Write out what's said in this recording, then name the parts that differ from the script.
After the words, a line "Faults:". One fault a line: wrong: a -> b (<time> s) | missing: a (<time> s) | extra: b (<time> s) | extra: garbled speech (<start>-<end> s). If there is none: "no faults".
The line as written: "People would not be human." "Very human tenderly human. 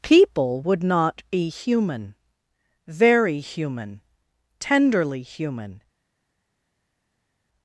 "People would not be human." "Very human tenderly human.
Faults:
no faults